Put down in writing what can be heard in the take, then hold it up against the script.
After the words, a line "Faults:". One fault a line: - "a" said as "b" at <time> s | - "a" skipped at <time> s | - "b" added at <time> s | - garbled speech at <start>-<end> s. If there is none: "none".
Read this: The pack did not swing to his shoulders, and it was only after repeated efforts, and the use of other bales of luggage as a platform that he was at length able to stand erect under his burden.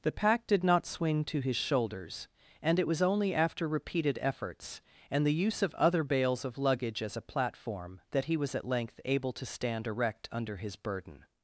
The pack did not swing to his shoulders, and it was only after repeated efforts, and the use of other bales of luggage as a platform that he was at length able to stand erect under his burden.
Faults:
none